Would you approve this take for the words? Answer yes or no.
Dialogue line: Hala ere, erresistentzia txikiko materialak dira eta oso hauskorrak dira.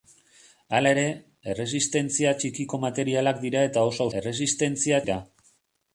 no